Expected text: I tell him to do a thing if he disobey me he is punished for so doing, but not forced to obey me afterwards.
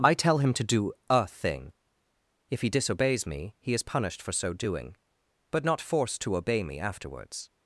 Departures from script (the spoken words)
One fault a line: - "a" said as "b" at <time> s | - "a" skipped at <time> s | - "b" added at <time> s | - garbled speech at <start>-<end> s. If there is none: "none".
- "disobey" said as "disobeys" at 2.7 s